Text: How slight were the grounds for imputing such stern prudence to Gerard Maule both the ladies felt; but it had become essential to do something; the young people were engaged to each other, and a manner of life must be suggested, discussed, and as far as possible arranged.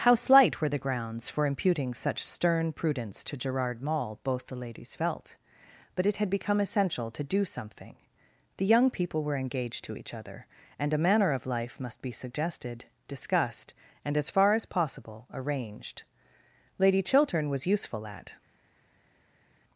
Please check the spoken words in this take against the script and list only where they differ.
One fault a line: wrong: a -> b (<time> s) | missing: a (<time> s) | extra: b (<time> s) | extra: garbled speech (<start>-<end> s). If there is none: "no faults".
extra: Lady Chiltern was useful at (16.8 s)